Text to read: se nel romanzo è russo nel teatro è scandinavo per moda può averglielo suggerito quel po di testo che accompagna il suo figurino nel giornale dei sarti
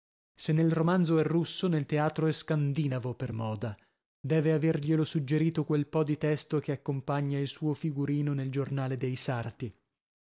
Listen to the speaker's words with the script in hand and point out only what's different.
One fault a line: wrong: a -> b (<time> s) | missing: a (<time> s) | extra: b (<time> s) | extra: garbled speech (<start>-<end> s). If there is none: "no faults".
wrong: può -> deve (4.2 s)